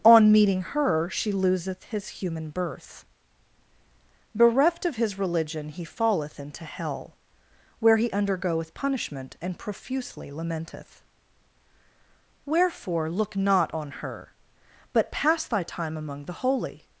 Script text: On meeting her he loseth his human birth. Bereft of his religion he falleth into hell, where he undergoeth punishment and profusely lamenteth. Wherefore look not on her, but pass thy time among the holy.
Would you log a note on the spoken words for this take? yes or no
yes